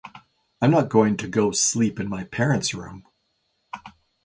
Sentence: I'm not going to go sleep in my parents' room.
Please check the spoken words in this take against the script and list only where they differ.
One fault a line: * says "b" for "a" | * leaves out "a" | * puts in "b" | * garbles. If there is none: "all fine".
all fine